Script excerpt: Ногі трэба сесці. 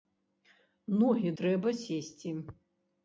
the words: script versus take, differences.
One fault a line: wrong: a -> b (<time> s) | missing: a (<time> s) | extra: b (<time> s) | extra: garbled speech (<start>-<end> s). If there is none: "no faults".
no faults